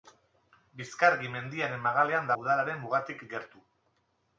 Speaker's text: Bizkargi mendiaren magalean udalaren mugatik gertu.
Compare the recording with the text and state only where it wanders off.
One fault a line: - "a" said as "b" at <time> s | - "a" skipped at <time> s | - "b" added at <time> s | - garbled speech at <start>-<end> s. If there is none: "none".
none